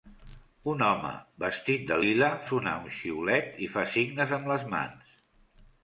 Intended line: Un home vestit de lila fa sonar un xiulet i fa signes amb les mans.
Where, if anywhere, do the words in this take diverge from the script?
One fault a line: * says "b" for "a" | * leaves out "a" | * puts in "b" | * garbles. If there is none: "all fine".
* leaves out "fa"